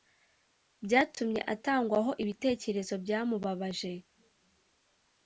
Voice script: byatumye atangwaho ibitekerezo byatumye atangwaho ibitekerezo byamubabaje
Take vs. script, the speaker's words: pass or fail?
fail